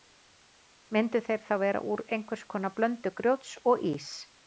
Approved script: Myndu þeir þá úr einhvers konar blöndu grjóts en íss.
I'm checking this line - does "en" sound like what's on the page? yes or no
no